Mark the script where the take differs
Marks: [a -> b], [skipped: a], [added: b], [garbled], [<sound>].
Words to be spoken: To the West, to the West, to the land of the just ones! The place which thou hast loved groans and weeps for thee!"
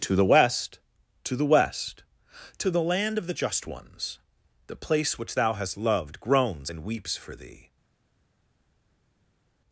To the West, to the West, to the land of the just ones! The place which thou hast loved groans and weeps for thee!"